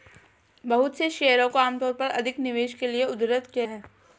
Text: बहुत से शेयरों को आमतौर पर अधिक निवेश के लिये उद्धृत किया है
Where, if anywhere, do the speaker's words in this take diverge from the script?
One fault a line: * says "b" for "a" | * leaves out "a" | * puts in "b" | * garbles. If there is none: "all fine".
all fine